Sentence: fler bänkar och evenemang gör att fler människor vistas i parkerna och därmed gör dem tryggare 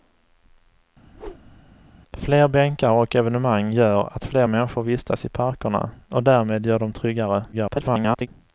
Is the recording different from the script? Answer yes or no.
yes